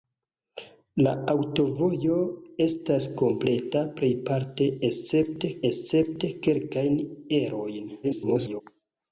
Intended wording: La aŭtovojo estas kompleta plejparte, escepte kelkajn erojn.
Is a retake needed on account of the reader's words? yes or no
yes